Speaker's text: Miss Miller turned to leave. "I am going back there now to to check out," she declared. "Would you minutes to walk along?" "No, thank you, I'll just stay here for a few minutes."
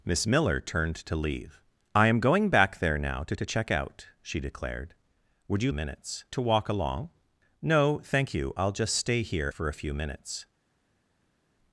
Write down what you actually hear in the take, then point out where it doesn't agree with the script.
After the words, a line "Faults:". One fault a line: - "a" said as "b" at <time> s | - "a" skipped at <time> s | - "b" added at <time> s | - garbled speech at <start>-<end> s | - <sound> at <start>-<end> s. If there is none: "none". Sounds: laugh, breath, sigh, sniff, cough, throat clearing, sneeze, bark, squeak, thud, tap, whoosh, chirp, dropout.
Miss Miller turned to leave. "I am going back there now to to check out," she declared. "Would you minutes to walk along?" "No, thank you, I'll just stay here for a few minutes."
Faults:
none